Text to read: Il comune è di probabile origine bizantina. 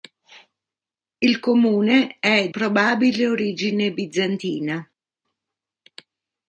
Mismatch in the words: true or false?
true